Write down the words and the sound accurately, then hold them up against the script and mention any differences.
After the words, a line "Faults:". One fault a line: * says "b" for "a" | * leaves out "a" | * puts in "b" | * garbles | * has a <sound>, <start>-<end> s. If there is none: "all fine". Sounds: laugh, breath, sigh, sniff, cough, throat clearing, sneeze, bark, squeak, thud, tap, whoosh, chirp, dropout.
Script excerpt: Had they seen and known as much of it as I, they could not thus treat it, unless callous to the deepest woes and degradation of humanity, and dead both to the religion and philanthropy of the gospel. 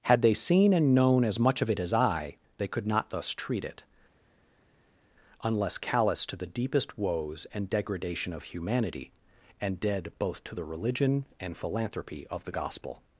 Had they seen and known as much of it as I, they could not thus treat it, unless callous to the deepest woes and degradation of humanity, and dead both to the religion and philanthropy of the gospel.
Faults:
all fine